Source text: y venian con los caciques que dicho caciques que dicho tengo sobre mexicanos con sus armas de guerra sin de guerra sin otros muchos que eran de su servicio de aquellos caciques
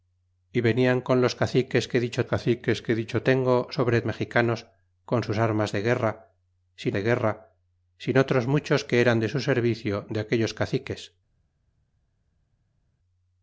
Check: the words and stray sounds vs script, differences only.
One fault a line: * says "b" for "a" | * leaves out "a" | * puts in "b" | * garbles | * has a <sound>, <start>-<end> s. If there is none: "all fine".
all fine